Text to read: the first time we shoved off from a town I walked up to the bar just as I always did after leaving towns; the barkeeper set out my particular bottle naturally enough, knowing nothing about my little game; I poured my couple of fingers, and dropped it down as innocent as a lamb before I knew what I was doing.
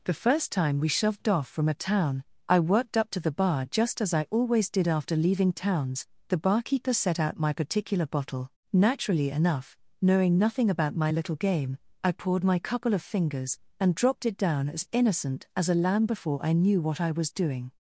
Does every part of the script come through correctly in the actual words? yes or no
no